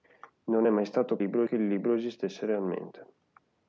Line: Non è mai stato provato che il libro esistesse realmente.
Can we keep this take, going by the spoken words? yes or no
no